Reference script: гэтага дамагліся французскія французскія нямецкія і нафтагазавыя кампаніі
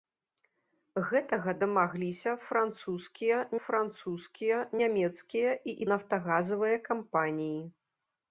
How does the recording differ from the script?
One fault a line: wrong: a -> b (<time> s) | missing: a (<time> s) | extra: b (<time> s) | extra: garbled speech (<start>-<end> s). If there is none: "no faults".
no faults